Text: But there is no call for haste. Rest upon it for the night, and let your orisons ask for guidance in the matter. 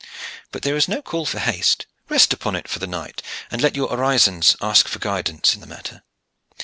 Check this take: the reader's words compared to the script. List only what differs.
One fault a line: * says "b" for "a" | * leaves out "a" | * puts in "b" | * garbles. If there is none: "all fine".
all fine